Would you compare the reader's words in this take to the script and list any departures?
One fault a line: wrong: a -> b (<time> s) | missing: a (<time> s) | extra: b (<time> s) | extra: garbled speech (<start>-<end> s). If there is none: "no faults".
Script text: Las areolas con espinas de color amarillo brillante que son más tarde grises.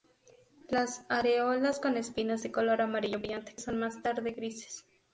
no faults